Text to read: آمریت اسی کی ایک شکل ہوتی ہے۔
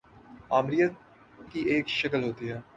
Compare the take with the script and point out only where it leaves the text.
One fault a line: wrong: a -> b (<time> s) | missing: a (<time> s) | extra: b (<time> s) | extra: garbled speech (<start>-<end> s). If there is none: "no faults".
missing: اسی (0.9 s)